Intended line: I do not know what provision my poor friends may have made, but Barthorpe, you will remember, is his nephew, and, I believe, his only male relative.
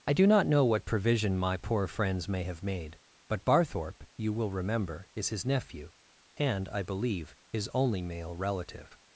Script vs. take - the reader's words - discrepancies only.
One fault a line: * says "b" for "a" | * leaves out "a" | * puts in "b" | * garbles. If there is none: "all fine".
all fine